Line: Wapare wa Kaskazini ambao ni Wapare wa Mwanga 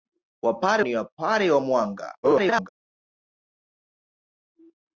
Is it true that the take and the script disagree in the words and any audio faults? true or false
true